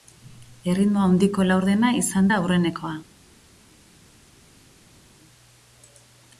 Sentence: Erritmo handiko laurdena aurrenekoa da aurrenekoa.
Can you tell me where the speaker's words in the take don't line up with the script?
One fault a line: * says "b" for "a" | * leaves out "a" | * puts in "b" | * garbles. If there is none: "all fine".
* says "izan" for "aurrenekoa"